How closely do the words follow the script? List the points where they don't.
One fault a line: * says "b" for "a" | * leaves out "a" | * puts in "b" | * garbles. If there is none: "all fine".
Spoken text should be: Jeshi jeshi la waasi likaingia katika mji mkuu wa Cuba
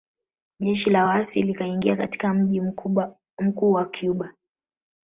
* leaves out "jeshi"